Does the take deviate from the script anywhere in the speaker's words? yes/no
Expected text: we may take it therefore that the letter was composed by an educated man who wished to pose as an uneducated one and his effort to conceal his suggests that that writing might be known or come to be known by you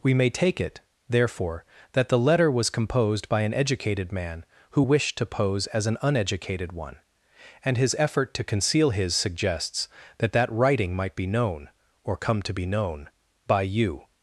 no